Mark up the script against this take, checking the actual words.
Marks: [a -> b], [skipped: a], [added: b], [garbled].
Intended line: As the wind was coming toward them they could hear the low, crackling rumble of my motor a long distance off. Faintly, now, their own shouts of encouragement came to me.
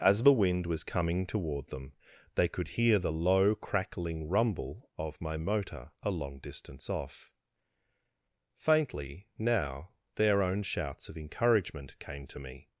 As the wind was coming toward them they could hear the low, crackling rumble of my motor a long distance off. Faintly, now, their own shouts of encouragement came to me.